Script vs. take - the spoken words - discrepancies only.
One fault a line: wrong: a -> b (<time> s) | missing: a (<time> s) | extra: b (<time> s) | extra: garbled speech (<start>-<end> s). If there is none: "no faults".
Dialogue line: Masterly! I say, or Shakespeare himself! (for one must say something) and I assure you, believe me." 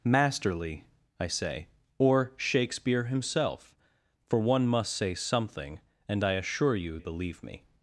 no faults